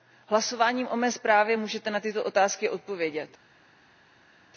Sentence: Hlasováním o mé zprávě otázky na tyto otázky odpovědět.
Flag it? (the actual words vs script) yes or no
yes